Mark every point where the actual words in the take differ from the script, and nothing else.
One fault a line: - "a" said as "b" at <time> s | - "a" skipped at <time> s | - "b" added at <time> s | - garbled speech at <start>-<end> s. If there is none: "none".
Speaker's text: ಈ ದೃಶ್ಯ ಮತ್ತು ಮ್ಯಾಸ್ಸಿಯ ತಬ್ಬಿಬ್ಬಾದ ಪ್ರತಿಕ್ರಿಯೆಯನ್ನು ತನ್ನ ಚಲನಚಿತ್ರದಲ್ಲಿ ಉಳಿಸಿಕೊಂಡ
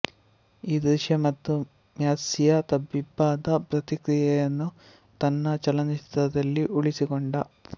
none